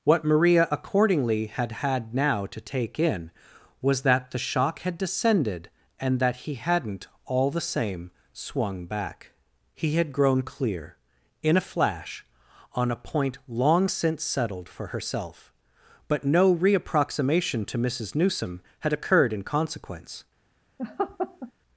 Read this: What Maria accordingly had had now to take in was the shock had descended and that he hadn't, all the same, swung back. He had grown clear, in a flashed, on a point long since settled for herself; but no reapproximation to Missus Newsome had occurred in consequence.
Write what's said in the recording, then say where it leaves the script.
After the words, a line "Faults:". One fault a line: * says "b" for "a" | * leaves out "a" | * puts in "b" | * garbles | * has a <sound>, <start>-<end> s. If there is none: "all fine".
What Maria accordingly had had now to take in was that the shock had descended and that he hadn't, all the same, swung back. He had grown clear, in a flash, on a point long since settled for herself; but no reapproximation to Missus Newsome had occurred in consequence.
Faults:
* puts in "that"
* says "flash" for "flashed"
* has a laugh, 20.8-21.5 s